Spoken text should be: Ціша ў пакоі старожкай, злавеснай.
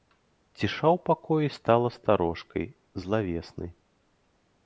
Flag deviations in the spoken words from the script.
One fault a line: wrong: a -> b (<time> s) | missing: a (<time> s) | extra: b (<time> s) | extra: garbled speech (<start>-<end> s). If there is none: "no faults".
extra: стала (1.6 s)